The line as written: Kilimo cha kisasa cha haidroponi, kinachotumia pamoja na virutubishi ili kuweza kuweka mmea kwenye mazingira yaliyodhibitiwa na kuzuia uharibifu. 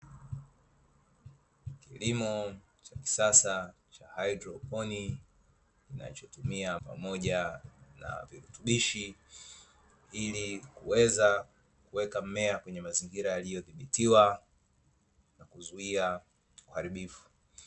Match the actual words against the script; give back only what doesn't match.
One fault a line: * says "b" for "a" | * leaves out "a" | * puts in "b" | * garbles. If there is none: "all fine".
all fine